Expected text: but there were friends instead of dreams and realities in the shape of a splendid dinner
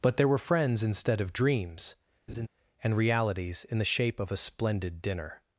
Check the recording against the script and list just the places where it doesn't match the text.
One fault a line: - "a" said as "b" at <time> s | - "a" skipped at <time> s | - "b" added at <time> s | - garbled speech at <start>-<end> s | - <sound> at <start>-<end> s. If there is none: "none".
- laugh at 2.3-2.5 s